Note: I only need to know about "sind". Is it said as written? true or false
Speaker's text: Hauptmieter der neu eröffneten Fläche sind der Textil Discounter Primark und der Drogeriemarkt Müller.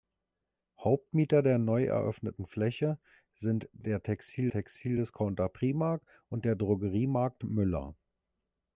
true